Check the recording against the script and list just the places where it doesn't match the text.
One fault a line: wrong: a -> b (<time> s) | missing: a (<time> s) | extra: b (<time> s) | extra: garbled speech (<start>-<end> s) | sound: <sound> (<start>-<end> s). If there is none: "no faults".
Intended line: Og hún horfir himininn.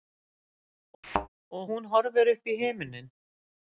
sound: thud (1.0-1.3 s)
extra: uppí (2.3 s)